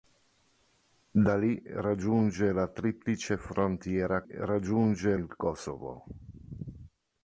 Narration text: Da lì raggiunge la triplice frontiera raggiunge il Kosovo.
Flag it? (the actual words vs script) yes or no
no